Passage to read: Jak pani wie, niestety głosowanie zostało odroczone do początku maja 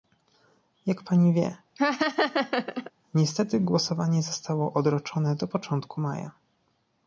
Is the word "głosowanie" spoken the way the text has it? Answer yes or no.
yes